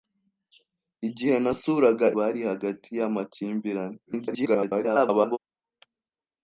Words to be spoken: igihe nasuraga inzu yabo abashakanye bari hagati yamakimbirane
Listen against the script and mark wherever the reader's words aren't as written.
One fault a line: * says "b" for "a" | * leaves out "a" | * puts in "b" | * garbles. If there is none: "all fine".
* leaves out "inzu yabo abashakanye"
* garbles